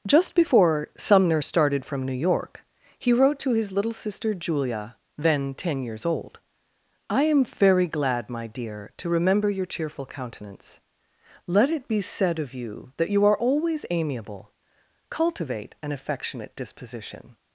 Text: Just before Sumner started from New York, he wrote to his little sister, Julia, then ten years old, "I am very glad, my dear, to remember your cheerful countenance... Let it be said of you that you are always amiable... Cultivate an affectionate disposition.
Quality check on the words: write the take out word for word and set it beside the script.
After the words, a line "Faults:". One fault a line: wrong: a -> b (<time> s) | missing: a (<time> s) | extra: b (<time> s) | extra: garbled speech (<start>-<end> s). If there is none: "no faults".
Just before Sumner started from New York, he wrote to his little sister, Julia, then ten years old, "I am very glad, my dear, to remember your cheerful countenance... Let it be said of you that you are always amiable... Cultivate an affectionate disposition.
Faults:
no faults